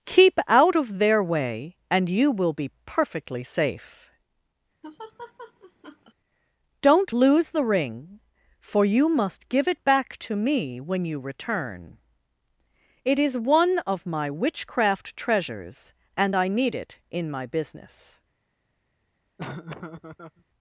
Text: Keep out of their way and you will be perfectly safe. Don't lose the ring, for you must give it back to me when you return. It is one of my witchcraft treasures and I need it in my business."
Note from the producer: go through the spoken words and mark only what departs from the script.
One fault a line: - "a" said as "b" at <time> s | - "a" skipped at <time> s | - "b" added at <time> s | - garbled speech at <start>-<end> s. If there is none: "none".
none